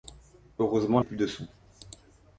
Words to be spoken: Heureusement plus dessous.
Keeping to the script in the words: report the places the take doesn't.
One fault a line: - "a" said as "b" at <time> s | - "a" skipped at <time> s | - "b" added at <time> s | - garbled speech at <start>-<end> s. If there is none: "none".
none